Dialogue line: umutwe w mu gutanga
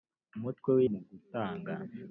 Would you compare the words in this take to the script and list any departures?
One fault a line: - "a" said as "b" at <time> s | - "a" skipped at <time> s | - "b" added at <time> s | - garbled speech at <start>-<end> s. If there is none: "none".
none